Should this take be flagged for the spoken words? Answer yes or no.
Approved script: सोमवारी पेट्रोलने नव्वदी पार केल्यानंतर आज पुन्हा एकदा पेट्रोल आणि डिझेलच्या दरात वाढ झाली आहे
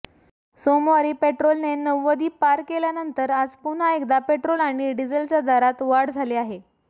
no